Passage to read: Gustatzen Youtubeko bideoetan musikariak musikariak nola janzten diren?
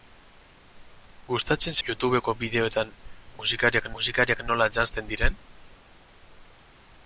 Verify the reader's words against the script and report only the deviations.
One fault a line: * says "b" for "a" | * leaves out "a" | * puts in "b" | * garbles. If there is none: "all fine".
all fine